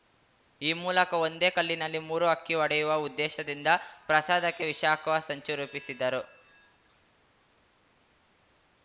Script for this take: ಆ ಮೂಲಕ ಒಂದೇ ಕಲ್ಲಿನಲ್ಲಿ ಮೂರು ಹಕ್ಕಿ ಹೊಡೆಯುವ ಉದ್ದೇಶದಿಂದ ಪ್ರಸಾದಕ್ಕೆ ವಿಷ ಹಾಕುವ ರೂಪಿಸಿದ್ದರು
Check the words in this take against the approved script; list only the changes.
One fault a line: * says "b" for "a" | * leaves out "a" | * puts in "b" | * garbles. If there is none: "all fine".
* says "ಈ" for "ಆ"
* puts in "ಸಂಚು"